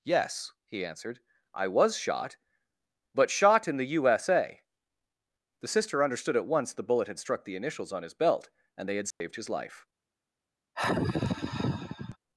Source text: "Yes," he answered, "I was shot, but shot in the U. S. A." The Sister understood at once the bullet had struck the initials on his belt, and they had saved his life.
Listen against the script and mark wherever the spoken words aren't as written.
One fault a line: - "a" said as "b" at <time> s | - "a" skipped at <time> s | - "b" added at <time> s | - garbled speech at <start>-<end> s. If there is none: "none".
none